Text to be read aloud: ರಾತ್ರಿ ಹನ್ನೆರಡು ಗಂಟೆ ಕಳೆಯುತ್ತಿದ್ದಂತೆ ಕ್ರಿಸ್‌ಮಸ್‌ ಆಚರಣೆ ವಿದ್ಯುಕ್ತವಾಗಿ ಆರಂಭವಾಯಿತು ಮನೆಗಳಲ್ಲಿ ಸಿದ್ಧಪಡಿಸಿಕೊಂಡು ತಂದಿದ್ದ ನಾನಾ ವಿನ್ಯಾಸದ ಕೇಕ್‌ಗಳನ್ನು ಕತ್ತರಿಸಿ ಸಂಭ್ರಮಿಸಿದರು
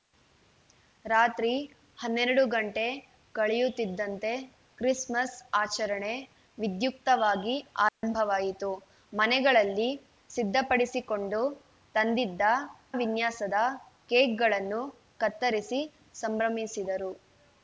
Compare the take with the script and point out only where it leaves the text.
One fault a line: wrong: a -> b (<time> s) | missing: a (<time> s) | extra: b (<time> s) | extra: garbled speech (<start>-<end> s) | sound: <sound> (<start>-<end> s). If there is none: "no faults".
sound: dropout (7.9-8.0 s)
missing: ನಾನಾ (12.5 s)